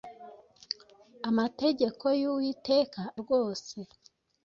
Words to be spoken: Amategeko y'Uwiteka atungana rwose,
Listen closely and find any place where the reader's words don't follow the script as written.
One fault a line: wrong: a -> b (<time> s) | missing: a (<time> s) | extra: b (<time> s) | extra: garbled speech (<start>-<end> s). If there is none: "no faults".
missing: atungana (3.0 s)